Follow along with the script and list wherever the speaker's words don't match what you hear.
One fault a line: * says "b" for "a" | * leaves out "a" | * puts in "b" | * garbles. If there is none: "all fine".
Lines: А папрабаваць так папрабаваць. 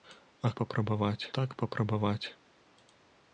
all fine